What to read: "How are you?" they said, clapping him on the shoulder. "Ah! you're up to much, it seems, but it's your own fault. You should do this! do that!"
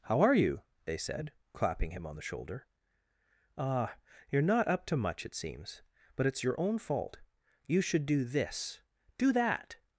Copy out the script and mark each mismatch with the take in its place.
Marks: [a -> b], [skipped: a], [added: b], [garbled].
"How are you?" they said, clapping him on the shoulder. "Ah! you're [added: not] up to much, it seems, but it's your own fault. You should do this! do that!"